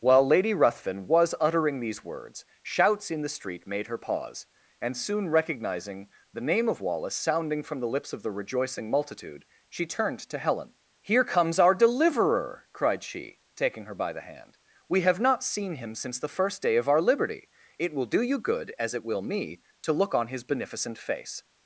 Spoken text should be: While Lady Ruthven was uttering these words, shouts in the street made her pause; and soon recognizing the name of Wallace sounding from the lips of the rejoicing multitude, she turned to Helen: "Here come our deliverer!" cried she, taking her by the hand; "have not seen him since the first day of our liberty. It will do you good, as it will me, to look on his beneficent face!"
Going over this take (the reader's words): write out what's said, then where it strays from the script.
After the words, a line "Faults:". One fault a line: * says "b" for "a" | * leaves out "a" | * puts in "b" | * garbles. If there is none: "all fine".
While Lady Ruthven was uttering these words, shouts in the street made her pause; and soon recognizing the name of Wallace sounding from the lips of the rejoicing multitude, she turned to Helen: "Here comes our deliverer!" cried she, taking her by the hand; "we have not seen him since the first day of our liberty. It will do you good, as it will me, to look on his beneficent face!"
Faults:
* says "comes" for "come"
* puts in "we"